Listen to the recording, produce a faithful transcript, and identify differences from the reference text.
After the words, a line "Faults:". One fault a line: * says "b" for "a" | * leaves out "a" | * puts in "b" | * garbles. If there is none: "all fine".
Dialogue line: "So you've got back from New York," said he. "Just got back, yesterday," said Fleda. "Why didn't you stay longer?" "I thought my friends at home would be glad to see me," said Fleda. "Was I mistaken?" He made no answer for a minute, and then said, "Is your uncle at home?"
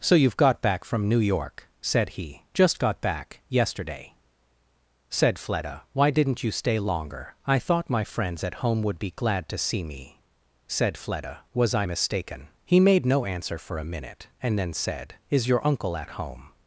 "So you've got back from New York," said he. "Just got back, yesterday," said Fleda. "Why didn't you stay longer?" "I thought my friends at home would be glad to see me," said Fleda. "Was I mistaken?" He made no answer for a minute, and then said, "Is your uncle at home?"
Faults:
all fine